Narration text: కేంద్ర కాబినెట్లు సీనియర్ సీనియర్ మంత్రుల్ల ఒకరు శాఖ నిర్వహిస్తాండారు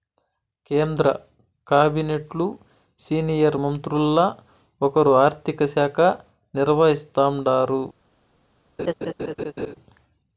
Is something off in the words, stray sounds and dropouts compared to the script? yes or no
yes